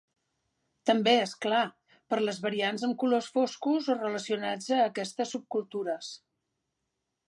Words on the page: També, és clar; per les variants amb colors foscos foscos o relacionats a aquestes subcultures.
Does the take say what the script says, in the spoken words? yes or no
no